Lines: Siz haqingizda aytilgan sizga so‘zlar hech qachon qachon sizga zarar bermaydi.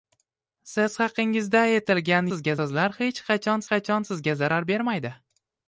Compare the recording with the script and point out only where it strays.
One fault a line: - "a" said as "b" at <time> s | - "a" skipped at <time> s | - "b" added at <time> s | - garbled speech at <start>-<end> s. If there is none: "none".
none